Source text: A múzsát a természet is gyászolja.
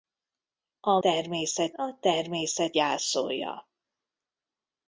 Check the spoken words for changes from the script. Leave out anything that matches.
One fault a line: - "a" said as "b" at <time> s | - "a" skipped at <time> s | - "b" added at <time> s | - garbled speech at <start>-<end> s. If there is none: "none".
- "múzsát" said as "természet" at 1.0 s
- "is" skipped at 2.8 s